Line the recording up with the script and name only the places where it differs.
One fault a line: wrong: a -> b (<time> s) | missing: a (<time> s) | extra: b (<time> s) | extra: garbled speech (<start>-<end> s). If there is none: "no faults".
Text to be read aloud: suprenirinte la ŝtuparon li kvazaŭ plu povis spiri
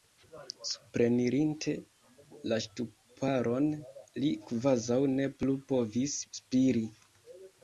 extra: ne (5.1 s)